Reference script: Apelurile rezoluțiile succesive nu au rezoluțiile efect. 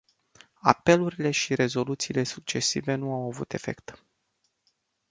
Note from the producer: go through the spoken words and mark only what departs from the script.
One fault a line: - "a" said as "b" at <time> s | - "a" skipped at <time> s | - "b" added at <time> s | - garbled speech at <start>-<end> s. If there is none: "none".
- "și" added at 1.3 s
- "rezoluțiile" said as "avut" at 3.3 s